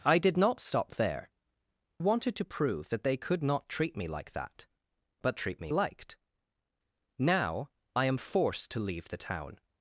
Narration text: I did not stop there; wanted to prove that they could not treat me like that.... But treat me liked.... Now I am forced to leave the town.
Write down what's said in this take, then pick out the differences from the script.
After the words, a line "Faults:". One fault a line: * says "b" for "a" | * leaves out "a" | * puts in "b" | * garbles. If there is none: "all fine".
I did not stop there; wanted to prove that they could not treat me like that.... But treat me liked.... Now I am forced to leave the town.
Faults:
all fine